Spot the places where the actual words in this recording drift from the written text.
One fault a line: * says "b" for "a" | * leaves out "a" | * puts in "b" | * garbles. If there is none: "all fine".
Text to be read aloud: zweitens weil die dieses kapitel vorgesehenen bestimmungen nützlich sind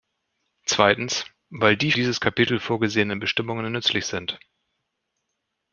all fine